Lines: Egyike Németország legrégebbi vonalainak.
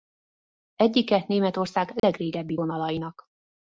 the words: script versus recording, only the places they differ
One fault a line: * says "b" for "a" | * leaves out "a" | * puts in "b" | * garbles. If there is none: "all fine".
all fine